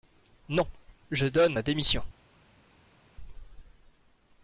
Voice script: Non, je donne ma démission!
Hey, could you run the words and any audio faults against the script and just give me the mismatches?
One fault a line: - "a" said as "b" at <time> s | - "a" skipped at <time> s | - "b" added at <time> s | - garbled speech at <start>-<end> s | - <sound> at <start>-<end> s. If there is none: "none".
none